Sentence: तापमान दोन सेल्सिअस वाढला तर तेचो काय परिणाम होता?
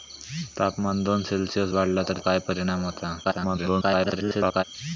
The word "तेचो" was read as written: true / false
false